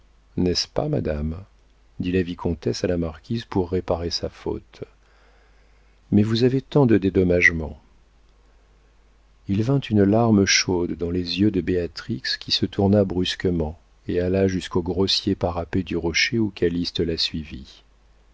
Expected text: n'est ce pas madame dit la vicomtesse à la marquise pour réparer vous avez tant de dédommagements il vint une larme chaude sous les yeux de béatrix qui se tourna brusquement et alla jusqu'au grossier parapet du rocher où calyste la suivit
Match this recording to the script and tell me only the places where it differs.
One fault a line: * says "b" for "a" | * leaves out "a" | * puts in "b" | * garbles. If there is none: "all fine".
* puts in "sa faute mais"
* says "dans" for "sous"